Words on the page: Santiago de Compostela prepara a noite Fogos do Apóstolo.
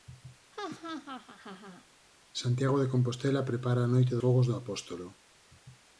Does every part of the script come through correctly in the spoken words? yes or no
yes